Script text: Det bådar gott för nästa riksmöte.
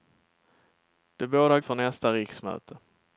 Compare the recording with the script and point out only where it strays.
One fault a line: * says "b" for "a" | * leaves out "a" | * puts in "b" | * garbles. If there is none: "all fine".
* leaves out "gott"